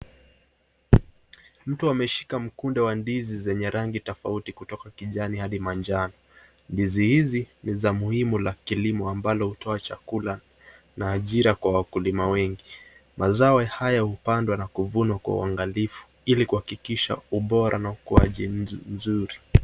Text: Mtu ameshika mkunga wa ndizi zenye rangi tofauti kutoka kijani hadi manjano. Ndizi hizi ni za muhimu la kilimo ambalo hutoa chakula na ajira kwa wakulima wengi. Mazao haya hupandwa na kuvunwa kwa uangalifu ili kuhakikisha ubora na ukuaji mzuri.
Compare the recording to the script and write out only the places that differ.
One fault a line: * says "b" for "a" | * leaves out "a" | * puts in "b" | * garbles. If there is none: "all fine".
all fine